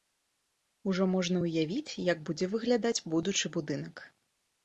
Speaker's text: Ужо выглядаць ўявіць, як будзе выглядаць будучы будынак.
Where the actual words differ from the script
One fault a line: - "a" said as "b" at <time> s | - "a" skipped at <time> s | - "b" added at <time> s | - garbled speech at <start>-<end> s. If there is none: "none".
- "выглядаць" said as "можна" at 1.1 s